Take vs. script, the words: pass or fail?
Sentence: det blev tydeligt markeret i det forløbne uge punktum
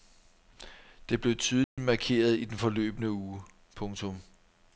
fail